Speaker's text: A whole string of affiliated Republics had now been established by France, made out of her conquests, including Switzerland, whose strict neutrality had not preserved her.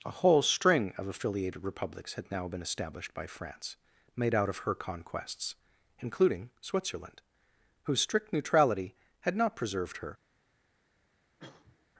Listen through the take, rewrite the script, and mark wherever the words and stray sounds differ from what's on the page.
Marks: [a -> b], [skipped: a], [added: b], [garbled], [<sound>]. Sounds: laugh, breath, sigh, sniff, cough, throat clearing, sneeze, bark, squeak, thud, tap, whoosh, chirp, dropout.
A whole string of affiliated Republics had now been established by France, made out of her conquests, including Switzerland, whose strict neutrality had not preserved her. [cough]